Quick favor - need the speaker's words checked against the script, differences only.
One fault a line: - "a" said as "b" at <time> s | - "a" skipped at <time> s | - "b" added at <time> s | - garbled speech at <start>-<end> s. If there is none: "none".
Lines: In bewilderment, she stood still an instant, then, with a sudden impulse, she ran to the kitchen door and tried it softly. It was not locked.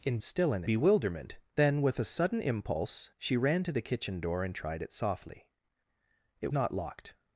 - "bewilderment she stood" skipped at 0.2 s
- "instant" said as "bewilderment" at 0.6 s
- "was" skipped at 6.5 s